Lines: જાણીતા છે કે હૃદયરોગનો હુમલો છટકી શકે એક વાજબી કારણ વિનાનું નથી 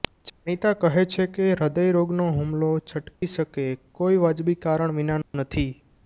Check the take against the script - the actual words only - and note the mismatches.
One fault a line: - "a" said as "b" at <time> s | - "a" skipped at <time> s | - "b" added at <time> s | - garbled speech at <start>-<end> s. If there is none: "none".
- "કહે" added at 0.8 s
- "એક" said as "કોઈ" at 4.0 s